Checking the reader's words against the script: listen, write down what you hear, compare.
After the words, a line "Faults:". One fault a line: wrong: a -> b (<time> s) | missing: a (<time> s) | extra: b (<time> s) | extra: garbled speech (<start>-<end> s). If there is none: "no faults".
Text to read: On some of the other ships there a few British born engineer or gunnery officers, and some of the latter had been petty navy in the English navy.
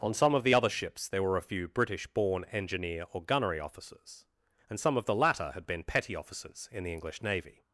On some of the other ships there were a few British born engineer or gunnery officers, and some of the latter had been petty officers in the English navy.
Faults:
extra: were (1.2 s)
wrong: navy -> officers (6.2 s)